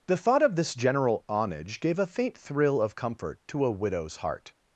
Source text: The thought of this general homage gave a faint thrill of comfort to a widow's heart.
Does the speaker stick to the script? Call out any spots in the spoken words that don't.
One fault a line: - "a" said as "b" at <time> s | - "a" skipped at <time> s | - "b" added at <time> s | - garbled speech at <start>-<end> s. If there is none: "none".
none